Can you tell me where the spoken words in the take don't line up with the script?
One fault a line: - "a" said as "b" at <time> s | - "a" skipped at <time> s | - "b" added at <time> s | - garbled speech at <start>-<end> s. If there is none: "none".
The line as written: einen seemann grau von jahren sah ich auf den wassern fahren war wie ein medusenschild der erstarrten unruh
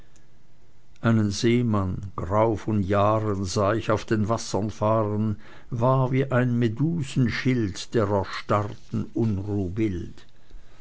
none